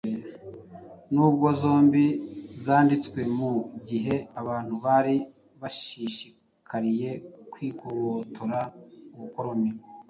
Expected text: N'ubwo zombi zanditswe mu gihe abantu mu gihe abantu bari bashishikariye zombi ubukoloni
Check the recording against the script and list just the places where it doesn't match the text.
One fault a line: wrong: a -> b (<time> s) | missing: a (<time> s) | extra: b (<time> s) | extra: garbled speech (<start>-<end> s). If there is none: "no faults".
missing: mu gihe abantu (4.7 s)
wrong: zombi -> kwigobotora (7.5 s)